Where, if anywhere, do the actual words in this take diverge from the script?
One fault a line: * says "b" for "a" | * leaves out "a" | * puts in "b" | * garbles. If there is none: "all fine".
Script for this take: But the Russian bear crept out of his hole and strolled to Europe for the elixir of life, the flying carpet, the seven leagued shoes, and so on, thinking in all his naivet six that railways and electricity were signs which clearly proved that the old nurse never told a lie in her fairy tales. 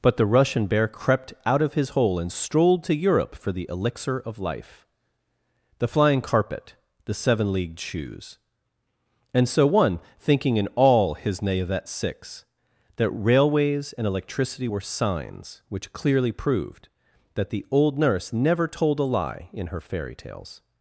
* says "one" for "on"